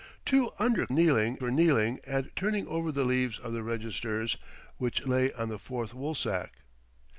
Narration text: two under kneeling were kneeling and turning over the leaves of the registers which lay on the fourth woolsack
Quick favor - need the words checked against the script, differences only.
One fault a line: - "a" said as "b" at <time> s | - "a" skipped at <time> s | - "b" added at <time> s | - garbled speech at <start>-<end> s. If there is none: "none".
none